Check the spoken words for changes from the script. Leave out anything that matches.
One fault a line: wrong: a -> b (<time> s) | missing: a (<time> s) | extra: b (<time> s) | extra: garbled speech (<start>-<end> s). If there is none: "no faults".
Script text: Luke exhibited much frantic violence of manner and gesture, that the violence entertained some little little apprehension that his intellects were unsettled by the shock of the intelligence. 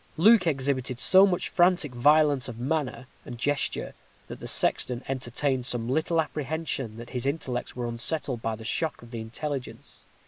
extra: so (1.0 s)
wrong: violence -> sexton (4.5 s)
missing: little (6.2 s)